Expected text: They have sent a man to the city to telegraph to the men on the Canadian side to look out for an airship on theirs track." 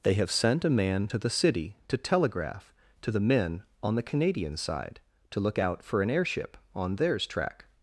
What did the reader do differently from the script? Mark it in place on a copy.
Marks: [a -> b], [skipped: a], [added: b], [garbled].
They have sent a man to the city to telegraph to the men on the Canadian side to look out for an airship on theirs track."